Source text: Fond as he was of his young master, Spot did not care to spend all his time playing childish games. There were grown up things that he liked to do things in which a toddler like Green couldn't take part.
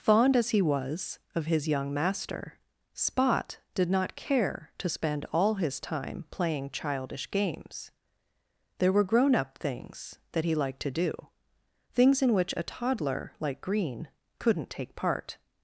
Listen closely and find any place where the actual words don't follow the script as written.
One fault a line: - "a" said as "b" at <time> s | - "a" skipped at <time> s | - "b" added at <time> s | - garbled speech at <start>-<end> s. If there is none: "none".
none